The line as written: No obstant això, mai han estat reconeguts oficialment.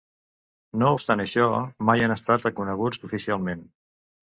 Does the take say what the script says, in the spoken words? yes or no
yes